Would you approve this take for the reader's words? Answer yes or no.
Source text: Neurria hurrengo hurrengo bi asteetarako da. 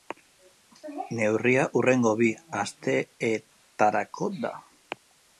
no